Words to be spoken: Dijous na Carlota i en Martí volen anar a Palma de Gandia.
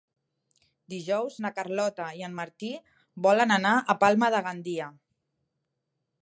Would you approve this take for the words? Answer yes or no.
yes